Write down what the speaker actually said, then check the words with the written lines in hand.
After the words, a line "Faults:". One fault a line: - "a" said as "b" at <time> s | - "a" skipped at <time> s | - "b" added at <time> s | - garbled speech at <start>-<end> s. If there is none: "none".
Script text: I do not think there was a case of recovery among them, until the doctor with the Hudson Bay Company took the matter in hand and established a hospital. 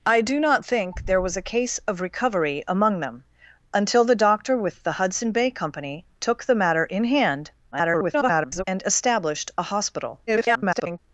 I do not think there was a case of recovery among them, until the doctor with the Hudson Bay Company took the matter in hand [garbled] and established a hospital. [garbled]
Faults:
- garbled speech at 7.7-8.6 s
- garbled speech at 10.3-11.0 s